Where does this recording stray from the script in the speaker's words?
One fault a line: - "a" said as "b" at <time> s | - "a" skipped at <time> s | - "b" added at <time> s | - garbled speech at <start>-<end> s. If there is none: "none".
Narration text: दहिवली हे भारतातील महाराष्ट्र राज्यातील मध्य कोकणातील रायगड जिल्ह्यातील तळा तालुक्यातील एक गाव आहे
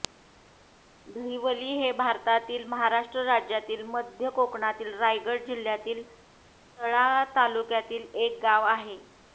none